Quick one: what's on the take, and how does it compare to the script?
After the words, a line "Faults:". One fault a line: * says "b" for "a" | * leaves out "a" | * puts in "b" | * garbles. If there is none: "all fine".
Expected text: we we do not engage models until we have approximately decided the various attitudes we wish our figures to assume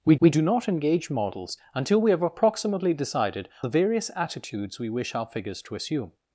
we we do not engage models until we have approximately decided the various attitudes we wish our figures to assume
Faults:
all fine